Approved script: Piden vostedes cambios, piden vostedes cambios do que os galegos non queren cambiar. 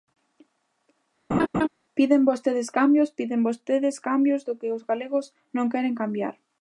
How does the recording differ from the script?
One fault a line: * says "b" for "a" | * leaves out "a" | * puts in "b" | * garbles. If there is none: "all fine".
all fine